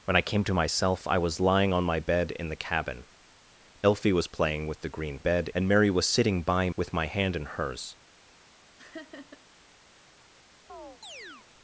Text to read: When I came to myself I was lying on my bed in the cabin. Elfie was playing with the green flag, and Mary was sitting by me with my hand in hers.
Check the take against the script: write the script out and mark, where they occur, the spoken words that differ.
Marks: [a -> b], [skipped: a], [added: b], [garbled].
When I came to myself I was lying on my bed in the cabin. Elfie was playing with the green [flag, -> bed] and Mary was sitting by [skipped: me] with my hand in hers.